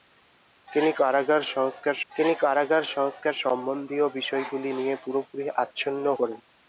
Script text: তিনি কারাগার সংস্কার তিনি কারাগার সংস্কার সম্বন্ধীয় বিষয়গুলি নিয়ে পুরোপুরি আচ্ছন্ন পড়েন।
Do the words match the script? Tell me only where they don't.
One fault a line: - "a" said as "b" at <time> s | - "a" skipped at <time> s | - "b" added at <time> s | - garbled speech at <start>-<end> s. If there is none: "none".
none